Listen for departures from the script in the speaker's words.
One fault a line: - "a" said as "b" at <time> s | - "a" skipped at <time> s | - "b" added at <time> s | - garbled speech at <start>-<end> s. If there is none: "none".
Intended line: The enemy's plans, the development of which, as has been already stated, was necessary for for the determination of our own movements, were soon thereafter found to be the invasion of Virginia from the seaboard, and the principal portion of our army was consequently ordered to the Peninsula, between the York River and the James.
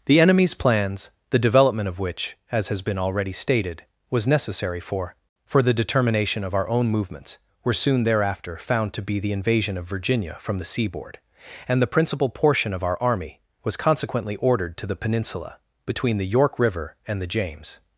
none